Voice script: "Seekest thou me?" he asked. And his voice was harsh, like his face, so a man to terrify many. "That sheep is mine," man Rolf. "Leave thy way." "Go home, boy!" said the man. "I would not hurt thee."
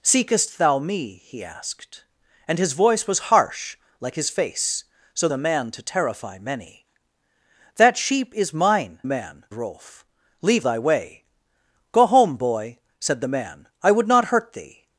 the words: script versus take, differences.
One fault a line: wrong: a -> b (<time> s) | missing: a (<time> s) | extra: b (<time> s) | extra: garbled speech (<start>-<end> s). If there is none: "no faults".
no faults